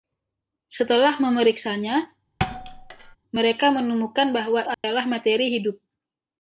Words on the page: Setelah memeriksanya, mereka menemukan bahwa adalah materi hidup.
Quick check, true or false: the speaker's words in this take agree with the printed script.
true